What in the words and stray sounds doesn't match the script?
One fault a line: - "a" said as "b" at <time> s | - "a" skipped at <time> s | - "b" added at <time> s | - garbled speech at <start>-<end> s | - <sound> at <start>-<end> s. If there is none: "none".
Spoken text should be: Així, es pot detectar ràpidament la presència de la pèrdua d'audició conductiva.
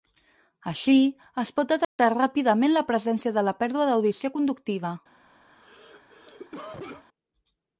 - dropout at 1.8-2.0 s
- cough at 5.5-7.0 s